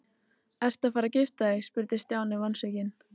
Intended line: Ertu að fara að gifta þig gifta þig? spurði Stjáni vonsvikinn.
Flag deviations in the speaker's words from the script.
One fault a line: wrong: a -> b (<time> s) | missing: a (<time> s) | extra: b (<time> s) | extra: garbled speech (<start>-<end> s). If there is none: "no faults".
missing: gifta þig (1.7 s)